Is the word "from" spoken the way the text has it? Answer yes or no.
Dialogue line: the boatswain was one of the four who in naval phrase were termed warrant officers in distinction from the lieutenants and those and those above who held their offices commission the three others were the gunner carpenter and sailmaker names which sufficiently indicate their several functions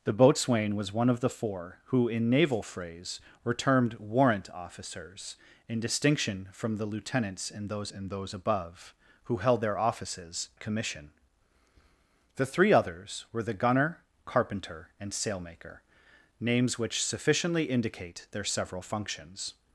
yes